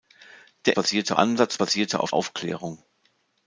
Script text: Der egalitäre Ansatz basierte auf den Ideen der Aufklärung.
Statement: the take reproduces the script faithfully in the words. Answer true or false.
false